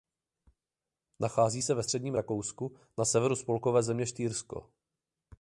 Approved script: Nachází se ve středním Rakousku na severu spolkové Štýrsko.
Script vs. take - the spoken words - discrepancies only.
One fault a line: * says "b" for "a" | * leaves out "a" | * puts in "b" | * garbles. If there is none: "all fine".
* puts in "země"